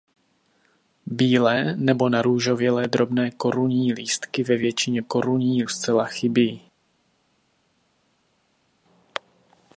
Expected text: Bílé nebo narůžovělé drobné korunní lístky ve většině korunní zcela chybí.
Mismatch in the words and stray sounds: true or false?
false